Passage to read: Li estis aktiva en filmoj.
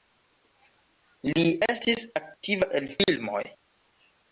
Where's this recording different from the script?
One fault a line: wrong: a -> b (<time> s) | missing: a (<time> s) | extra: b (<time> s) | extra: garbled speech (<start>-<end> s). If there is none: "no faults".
no faults